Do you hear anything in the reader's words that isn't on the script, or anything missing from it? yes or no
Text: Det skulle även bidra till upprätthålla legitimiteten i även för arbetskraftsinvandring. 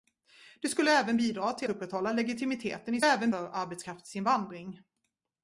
no